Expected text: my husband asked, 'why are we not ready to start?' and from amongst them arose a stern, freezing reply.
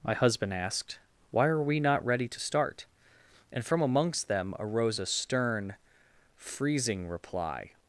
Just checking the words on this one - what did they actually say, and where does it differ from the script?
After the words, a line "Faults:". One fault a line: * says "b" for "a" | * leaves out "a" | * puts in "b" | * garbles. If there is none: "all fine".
my husband asked, 'why are we not ready to start?' and from amongst them arose a stern, freezing reply.
Faults:
all fine